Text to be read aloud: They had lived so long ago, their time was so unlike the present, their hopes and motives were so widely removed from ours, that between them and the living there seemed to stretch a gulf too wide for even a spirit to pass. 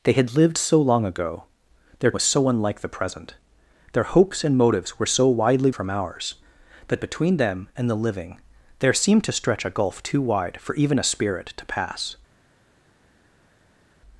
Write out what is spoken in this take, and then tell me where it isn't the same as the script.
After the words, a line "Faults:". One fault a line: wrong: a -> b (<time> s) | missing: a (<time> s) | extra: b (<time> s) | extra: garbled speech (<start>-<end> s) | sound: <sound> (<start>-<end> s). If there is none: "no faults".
They had lived so long ago, their was so unlike the present, their hopes and motives were so widely from ours, that between them and the living there seemed to stretch a gulf too wide for even a spirit to pass.
Faults:
missing: time (2.1 s)
missing: removed (5.7 s)